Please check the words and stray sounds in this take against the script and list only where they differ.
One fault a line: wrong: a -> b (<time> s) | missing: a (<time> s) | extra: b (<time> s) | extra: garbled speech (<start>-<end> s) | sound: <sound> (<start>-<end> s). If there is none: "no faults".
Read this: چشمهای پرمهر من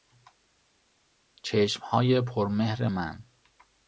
no faults